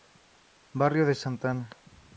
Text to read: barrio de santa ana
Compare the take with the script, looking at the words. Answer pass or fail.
pass